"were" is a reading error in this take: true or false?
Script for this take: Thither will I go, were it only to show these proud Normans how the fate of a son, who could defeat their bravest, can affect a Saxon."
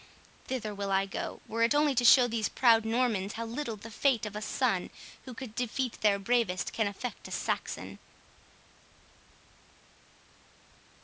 false